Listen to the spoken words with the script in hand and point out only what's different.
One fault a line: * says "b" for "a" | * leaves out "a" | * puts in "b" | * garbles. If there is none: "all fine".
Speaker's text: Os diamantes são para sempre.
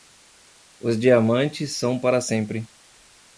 all fine